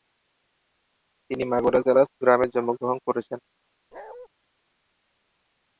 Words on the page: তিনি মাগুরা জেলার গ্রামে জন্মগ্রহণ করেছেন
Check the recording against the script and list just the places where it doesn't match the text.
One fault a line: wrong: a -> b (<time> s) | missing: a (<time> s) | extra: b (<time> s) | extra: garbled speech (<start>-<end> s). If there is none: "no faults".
no faults